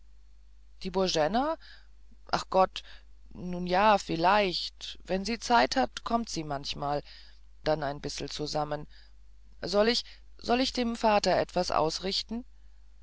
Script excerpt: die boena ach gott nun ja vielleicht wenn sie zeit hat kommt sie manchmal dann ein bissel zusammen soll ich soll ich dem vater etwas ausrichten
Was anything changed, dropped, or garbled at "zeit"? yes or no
no